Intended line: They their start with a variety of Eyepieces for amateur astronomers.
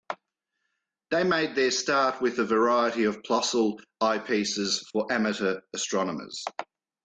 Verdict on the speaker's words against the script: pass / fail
fail